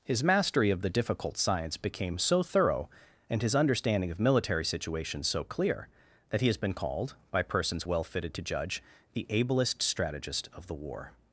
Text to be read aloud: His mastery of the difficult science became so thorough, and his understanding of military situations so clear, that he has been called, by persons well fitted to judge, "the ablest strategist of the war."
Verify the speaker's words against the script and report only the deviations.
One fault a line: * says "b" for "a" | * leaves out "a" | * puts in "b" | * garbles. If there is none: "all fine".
all fine